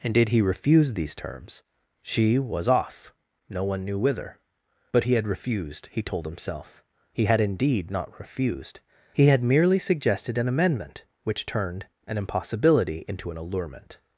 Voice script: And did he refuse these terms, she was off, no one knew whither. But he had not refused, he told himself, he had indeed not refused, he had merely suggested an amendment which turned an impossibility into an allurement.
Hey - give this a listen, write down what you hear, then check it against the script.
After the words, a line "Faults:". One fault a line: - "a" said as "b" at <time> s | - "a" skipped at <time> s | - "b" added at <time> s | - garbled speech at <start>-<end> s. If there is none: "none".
And did he refuse these terms, she was off, no one knew whither. But he had refused, he told himself, he had indeed not refused, he had merely suggested an amendment which turned an impossibility into an allurement.
Faults:
- "not" skipped at 5.3 s